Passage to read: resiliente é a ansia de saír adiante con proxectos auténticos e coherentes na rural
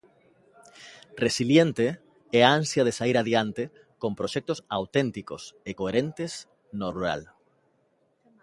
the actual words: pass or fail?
fail